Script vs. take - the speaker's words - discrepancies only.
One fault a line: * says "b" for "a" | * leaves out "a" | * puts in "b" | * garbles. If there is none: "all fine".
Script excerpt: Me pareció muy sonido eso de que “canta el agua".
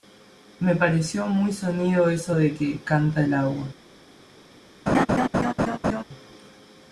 all fine